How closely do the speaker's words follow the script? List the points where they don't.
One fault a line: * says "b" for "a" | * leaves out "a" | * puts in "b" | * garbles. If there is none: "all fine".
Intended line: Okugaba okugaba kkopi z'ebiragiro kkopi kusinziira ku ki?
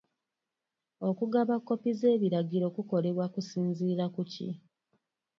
* leaves out "okugaba"
* says "kukolebwa" for "kkopi"